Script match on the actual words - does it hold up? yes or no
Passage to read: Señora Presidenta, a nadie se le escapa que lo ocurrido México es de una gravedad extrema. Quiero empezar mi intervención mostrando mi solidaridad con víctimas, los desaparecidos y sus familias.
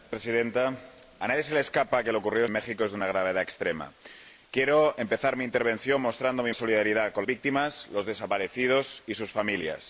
yes